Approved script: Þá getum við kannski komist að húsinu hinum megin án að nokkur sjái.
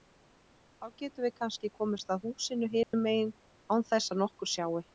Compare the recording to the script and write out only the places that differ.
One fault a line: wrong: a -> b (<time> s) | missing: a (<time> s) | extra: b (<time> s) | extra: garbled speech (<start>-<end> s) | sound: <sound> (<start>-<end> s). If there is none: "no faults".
sound: dropout (2.8-2.9 s)
extra: þess (3.9 s)